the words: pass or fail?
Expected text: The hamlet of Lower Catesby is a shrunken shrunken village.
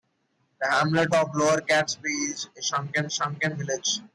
pass